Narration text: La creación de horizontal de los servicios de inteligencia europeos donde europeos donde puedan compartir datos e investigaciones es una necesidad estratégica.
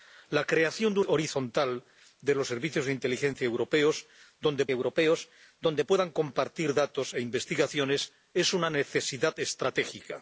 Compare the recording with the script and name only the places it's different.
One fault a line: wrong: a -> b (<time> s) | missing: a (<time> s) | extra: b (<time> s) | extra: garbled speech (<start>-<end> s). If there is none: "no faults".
no faults